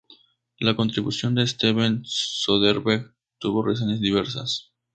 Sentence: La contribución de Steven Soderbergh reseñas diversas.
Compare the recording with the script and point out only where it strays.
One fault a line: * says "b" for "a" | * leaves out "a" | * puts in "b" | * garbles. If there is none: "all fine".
* puts in "tuvo"